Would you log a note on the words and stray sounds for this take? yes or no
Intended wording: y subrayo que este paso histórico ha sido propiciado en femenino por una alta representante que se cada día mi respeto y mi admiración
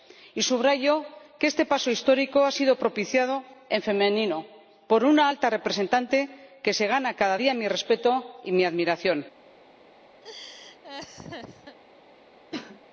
yes